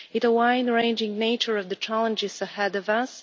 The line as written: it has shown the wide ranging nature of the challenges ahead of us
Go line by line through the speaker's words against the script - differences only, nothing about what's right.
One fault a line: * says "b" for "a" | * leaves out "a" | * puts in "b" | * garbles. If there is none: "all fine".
* leaves out "has shown"